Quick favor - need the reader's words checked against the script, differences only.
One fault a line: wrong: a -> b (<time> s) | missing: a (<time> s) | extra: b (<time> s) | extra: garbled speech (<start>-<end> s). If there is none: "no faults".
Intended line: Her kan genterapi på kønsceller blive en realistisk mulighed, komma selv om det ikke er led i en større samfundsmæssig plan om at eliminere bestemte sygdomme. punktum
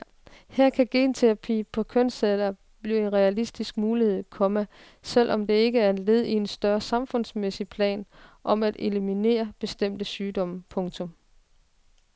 no faults